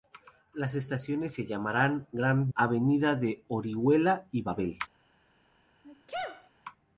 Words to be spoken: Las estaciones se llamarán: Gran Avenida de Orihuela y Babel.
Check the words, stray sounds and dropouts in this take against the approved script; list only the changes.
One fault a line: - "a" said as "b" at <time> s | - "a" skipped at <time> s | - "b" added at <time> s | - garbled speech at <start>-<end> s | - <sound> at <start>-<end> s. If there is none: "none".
- sneeze at 5.8-6.5 s